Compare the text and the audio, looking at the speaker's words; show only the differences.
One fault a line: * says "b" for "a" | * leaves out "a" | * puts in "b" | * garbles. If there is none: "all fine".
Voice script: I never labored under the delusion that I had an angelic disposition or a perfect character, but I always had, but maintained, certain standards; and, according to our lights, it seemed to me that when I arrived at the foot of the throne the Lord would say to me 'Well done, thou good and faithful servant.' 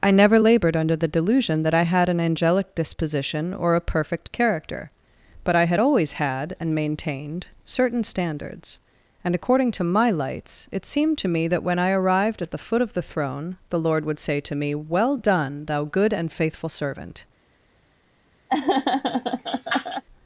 * puts in "had"
* says "and" for "but"
* says "my" for "our"